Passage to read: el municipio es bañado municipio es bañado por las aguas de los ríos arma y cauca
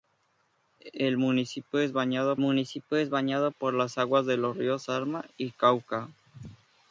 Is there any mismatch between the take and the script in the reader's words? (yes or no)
no